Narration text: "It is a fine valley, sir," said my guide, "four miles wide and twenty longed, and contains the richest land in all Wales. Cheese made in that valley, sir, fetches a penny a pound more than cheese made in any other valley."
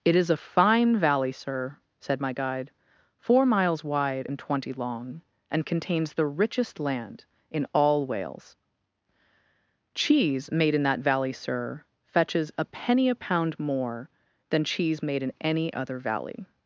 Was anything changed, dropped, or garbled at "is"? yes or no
no